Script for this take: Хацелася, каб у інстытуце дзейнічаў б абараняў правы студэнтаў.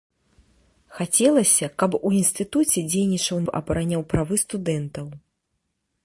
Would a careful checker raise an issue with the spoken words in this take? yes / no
no